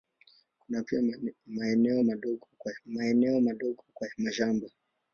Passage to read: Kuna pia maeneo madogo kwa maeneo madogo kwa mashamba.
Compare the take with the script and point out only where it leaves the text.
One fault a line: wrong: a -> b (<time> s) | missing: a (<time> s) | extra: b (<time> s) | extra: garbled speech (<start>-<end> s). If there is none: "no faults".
no faults